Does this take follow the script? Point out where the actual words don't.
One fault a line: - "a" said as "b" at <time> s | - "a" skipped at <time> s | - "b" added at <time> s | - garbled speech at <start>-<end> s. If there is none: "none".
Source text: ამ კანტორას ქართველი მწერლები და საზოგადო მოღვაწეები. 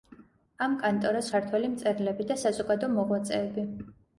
none